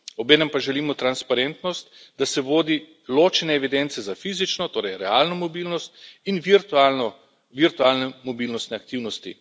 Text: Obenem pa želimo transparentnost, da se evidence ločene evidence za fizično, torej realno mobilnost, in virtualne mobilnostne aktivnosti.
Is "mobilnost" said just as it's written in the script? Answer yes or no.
yes